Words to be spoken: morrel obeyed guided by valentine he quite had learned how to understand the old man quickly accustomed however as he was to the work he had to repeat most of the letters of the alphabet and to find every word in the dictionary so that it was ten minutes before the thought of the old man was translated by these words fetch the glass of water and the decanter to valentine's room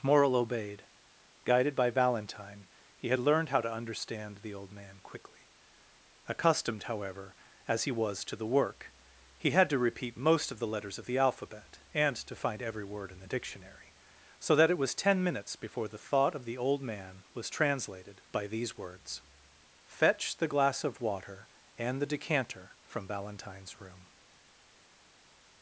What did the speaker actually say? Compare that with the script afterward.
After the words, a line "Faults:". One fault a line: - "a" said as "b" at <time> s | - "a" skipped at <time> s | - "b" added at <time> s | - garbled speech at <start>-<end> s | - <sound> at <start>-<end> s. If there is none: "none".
morrel obeyed guided by valentine he had learned how to understand the old man quickly accustomed however as he was to the work he had to repeat most of the letters of the alphabet and to find every word in the dictionary so that it was ten minutes before the thought of the old man was translated by these words fetch the glass of water and the decanter from valentine's room
Faults:
- "quite" skipped at 3.1 s
- "to" said as "from" at 22.8 s